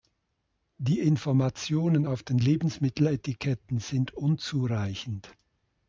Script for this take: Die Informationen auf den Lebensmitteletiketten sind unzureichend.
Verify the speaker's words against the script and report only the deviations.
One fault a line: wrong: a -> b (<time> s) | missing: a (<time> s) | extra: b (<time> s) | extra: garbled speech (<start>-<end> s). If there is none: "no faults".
no faults